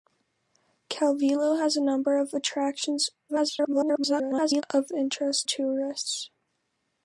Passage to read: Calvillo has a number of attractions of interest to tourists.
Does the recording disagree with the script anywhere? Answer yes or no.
yes